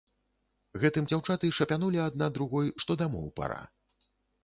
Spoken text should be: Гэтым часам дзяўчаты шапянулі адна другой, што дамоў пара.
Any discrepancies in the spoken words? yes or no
yes